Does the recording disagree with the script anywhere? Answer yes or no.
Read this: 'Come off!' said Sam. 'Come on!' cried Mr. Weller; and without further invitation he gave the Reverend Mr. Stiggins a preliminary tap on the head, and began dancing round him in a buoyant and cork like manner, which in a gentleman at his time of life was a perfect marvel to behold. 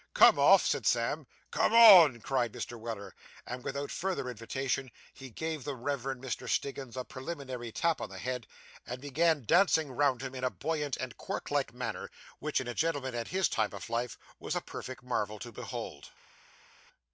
no